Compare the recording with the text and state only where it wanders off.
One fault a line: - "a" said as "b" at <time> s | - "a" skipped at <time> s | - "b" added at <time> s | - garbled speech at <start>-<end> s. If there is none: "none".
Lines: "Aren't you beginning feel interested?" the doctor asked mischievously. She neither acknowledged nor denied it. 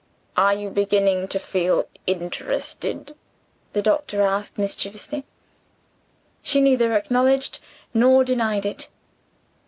- "Aren't" said as "Are" at 0.3 s
- "to" added at 1.3 s